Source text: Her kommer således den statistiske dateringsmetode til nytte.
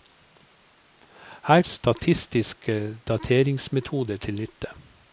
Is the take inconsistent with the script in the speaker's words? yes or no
yes